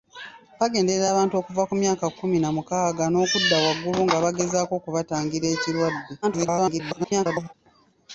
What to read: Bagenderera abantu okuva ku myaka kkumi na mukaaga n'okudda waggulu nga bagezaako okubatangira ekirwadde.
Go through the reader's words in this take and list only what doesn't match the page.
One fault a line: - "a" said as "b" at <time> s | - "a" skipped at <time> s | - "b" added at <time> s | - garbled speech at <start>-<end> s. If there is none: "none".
- garbled speech at 6.2-7.5 s